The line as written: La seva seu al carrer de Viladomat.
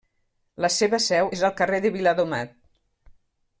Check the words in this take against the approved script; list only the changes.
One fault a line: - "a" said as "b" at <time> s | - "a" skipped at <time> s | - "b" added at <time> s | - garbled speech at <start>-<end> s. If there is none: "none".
- "és" added at 1.4 s